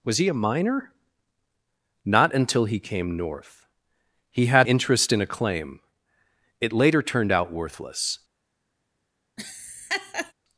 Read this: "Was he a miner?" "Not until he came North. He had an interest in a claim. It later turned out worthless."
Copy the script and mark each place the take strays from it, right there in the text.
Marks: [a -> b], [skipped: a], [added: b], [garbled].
"Was he a miner?" "Not until he came North. He had [skipped: an] interest in a claim. It later turned out worthless."